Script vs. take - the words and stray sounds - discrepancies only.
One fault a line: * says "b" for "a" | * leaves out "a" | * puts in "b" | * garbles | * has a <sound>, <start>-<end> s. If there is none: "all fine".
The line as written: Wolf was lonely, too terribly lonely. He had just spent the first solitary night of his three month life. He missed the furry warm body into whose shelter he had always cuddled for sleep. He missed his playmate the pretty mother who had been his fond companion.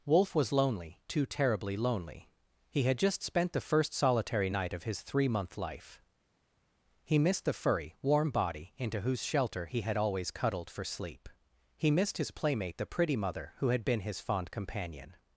all fine